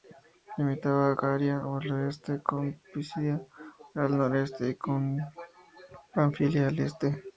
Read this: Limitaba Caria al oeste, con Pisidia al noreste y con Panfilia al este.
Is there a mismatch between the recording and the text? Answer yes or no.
no